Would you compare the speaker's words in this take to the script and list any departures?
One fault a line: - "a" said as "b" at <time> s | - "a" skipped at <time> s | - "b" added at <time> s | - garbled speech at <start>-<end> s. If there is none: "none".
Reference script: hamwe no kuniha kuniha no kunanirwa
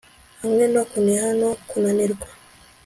- "kuniha" skipped at 1.3 s